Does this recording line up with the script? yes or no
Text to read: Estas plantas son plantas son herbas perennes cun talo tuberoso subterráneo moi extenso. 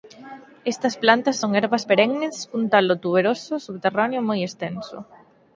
no